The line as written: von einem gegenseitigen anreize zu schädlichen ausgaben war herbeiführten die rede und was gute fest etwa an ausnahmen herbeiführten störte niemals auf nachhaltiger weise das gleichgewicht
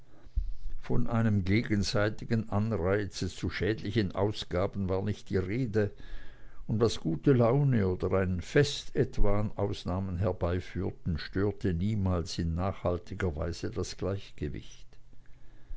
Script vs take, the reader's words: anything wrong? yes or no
yes